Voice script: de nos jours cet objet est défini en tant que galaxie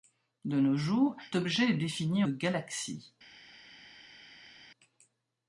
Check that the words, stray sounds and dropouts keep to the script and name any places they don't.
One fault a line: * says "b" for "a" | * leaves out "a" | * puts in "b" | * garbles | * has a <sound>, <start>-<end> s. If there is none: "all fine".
* leaves out "cet"
* leaves out "en tant que"